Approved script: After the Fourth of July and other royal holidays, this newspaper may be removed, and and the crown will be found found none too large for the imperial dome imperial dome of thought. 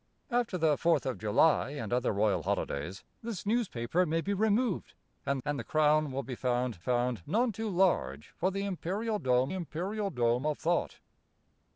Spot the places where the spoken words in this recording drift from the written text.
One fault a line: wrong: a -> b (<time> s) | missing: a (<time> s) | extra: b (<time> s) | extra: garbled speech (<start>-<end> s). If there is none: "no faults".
no faults